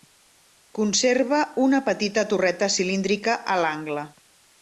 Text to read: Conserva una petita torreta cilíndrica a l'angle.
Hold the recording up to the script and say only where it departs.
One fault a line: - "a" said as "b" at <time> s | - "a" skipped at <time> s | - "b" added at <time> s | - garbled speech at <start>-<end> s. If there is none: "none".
none